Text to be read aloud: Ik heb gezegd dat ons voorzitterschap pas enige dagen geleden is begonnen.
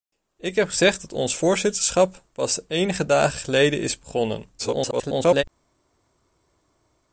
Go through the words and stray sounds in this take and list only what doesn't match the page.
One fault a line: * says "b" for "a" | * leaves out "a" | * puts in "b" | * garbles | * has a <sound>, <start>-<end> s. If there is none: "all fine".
* garbles